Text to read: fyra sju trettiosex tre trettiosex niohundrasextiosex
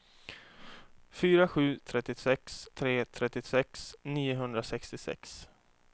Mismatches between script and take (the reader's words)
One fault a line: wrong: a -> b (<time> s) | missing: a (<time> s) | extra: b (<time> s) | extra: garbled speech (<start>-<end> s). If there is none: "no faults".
no faults